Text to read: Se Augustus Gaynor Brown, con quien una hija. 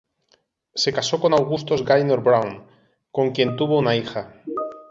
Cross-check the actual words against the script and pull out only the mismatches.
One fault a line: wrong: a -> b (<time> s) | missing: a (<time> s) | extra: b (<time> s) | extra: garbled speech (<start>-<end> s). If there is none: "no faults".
extra: casó con (0.9 s)
extra: tuvo (3.6 s)